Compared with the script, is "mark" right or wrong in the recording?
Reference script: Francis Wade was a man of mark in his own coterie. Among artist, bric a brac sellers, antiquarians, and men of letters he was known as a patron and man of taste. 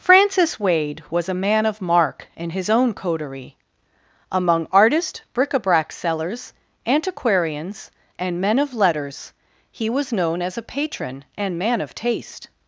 right